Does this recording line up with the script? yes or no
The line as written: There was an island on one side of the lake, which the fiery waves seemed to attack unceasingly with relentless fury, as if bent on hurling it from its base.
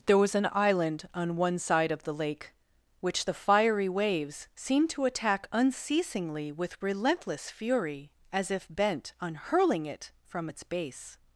yes